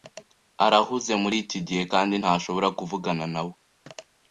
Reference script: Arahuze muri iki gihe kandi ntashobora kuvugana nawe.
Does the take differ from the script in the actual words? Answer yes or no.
no